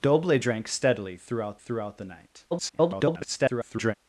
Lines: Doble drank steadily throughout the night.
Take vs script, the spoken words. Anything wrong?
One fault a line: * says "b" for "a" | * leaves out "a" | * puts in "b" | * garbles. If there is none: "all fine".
* puts in "throughout"
* garbles